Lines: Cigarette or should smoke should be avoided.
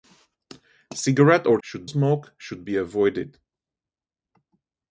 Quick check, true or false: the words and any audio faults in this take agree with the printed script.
true